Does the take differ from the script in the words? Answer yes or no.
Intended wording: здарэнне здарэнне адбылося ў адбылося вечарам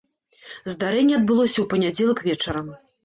yes